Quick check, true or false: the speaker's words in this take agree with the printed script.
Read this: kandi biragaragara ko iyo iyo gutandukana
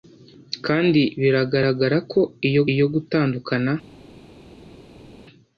true